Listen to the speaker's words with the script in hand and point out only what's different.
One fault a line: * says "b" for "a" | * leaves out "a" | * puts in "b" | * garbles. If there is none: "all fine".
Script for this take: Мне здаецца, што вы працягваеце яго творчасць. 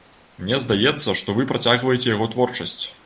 all fine